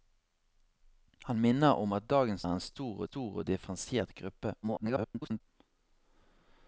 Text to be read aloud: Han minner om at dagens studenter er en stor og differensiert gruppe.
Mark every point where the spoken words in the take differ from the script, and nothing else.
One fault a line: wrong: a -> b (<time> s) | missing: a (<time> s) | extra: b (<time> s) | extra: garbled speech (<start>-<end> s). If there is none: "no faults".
missing: studenter (2.4 s)
extra: stor (3.0 s)
extra: garbled speech (4.6-5.4 s)